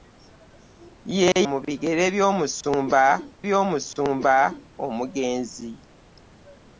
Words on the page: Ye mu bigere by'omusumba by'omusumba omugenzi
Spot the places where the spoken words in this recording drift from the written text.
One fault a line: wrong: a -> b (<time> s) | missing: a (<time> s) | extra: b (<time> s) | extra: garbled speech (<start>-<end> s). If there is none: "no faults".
no faults